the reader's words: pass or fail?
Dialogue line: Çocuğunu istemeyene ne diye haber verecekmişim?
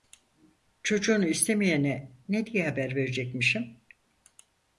pass